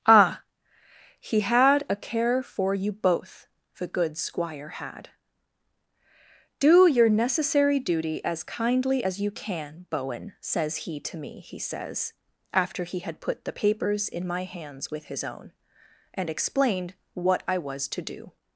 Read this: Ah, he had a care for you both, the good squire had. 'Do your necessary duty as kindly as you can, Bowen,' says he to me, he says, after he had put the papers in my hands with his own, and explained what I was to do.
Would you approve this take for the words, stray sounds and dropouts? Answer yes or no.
yes